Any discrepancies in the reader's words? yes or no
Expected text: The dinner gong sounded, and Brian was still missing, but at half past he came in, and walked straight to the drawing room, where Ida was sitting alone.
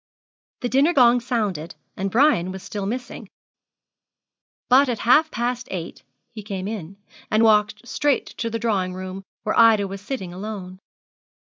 yes